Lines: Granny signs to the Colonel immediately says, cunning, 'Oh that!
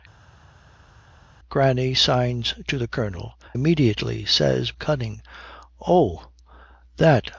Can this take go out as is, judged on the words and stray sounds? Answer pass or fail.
pass